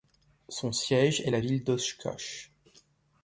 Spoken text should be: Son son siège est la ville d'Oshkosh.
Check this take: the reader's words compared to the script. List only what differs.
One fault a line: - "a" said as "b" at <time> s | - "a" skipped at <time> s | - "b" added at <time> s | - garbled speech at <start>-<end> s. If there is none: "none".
- "son" skipped at 0.7 s